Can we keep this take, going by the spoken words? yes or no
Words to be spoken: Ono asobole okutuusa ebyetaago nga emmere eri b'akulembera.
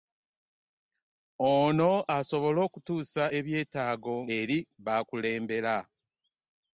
no